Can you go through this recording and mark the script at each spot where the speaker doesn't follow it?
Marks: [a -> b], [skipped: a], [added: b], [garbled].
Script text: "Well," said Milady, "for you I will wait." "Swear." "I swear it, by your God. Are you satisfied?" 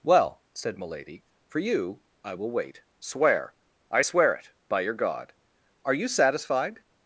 "Well," said Milady, "for you I will wait." "Swear." "I swear it, by your God. Are you satisfied?"